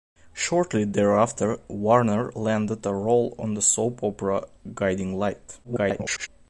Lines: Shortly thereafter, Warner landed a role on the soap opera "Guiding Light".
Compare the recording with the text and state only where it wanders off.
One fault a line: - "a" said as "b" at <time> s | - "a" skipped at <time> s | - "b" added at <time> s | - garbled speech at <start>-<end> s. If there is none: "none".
- garbled speech at 5.6-6.3 s